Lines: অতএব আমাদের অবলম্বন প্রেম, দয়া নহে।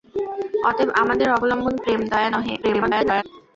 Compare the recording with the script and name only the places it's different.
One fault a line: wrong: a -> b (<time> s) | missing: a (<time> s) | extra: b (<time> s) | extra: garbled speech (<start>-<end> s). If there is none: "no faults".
extra: garbled speech (2.6-3.2 s)